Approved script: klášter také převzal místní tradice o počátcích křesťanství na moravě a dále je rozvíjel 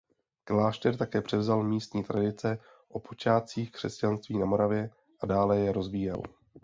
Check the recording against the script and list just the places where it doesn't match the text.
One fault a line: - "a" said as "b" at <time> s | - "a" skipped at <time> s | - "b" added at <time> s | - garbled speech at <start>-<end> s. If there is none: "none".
none